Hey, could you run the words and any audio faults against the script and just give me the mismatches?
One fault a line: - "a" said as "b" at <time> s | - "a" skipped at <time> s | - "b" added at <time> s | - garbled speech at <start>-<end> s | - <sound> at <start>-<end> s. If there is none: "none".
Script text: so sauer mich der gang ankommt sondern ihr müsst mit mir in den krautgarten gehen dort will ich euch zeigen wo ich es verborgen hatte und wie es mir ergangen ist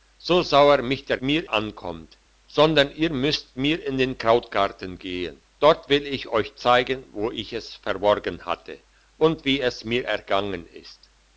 - "gang" said as "mir" at 1.2 s
- "mit" skipped at 3.6 s